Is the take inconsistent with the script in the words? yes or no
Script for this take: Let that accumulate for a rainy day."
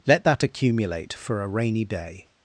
no